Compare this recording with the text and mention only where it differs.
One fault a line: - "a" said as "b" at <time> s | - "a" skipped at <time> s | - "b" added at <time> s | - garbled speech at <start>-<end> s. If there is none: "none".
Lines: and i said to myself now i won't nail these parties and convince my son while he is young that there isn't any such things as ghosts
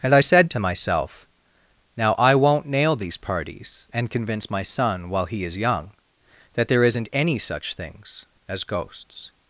none